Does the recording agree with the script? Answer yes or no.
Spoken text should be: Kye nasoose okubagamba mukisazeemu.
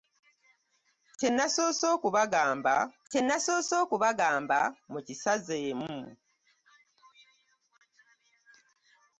no